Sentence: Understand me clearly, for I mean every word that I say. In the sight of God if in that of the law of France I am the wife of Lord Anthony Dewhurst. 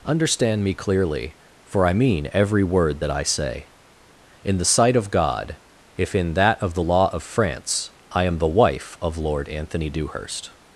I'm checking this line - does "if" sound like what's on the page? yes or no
yes